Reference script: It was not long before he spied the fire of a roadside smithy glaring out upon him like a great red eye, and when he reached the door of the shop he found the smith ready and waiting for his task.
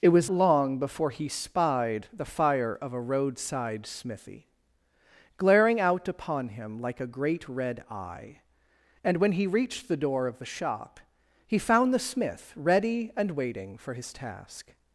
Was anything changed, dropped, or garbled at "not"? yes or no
yes